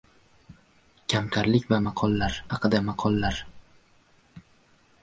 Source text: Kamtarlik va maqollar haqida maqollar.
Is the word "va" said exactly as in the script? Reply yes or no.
yes